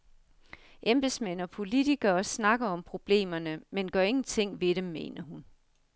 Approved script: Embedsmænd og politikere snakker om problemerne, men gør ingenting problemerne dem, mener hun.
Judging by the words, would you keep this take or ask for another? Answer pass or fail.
fail